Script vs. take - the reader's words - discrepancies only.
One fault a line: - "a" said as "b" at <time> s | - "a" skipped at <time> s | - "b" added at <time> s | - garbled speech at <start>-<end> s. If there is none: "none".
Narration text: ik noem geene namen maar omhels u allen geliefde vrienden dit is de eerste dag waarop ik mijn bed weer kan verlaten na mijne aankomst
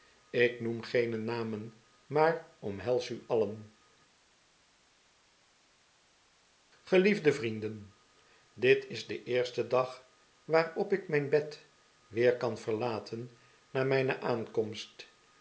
none